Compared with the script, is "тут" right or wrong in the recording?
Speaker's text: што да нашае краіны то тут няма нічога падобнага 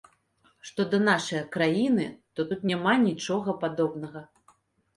right